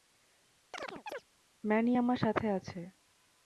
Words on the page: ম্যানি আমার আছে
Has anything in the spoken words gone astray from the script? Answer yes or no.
yes